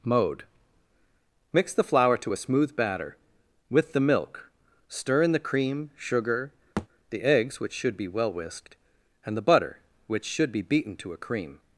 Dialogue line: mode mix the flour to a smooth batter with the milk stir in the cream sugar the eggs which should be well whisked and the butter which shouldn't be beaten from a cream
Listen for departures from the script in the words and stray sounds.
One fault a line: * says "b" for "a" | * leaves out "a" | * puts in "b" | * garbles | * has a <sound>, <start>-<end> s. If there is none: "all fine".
* has a thud, 6.8-6.9 s
* says "should" for "shouldn't"
* says "to" for "from"